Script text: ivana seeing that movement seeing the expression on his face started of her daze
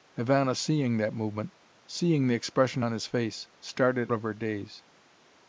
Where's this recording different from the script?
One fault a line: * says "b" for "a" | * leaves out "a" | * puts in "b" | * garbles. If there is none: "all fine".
all fine